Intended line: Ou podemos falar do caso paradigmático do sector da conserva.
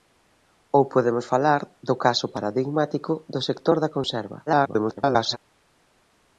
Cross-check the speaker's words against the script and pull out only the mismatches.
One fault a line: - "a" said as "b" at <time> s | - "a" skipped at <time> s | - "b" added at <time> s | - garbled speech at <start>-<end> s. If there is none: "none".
- garbled speech at 4.5-5.4 s